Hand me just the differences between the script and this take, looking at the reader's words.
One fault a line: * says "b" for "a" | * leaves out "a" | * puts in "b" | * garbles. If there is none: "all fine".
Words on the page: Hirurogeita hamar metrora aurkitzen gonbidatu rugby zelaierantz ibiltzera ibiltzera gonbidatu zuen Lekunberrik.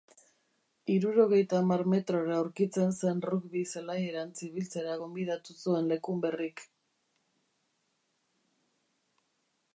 * says "zen" for "gonbidatu"
* leaves out "ibiltzera"